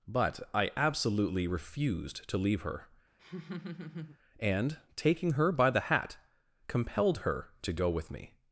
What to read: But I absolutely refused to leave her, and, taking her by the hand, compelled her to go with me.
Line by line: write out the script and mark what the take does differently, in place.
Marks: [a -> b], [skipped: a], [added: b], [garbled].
But I absolutely refused to leave her, and, taking her by the [hand, -> hat] compelled her to go with me.